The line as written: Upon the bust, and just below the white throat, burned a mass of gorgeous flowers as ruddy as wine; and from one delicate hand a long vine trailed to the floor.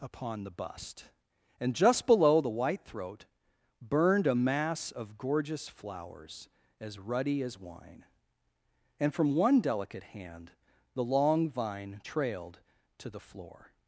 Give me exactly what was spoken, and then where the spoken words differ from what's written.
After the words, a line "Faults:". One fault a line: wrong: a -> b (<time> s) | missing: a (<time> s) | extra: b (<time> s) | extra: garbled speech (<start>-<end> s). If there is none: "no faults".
Upon the bust, and just below the white throat, burned a mass of gorgeous flowers as ruddy as wine; and from one delicate hand the long vine trailed to the floor.
Faults:
wrong: a -> the (10.9 s)